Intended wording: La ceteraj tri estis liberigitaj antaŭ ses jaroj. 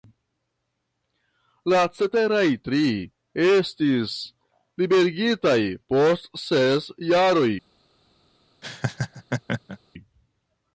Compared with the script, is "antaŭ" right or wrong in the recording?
wrong